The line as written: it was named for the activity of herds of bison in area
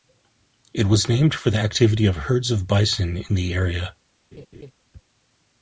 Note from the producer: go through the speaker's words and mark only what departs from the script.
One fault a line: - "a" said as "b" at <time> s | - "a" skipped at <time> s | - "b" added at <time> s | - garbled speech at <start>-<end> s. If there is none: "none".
- "the" added at 3.3 s